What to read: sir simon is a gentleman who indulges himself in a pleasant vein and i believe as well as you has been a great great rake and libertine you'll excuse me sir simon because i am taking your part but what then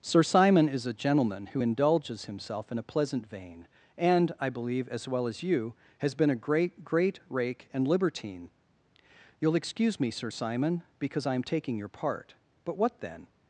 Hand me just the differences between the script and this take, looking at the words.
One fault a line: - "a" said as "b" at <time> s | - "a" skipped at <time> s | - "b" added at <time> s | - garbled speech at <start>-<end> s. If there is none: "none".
none